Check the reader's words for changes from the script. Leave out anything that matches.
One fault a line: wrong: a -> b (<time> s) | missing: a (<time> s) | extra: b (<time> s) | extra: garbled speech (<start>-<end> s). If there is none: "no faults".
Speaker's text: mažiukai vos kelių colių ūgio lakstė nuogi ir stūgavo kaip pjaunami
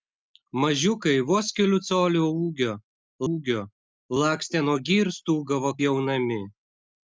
extra: ūgio (3.3 s)
missing: kaip (5.7 s)